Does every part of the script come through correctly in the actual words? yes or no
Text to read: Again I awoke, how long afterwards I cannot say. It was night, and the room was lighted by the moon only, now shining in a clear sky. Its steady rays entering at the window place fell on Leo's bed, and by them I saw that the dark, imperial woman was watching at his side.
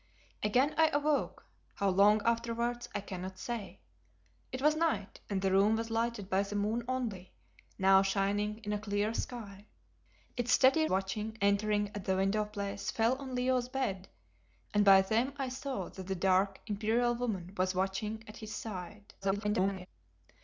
no